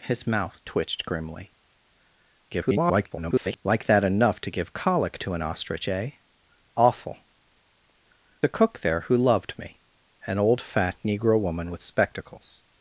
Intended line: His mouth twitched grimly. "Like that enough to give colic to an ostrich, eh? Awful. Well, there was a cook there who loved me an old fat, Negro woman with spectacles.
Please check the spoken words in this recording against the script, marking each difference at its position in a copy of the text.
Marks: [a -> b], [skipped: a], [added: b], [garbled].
His mouth twitched grimly. [garbled] "Like that enough to give colic to an ostrich, eh? Awful. [skipped: Well, there was] a cook there who loved me an old fat, Negro woman with spectacles.